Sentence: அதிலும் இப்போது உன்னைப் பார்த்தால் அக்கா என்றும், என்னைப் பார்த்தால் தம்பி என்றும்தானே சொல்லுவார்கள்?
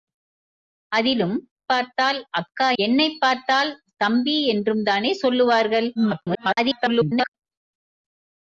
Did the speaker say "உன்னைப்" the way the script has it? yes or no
no